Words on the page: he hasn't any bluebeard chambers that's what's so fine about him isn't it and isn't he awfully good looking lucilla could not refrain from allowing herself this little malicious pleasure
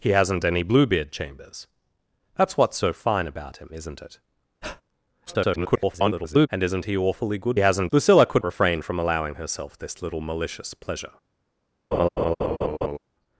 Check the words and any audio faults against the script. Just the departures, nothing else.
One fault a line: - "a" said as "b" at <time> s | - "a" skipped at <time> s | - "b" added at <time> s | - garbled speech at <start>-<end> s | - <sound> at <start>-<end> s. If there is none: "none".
- breath at 4.6-4.8 s
- garbled speech at 5.3-6.5 s
- "looking" said as "hasn't" at 7.6 s
- "not" skipped at 8.4 s
- laugh at 11.9-13.0 s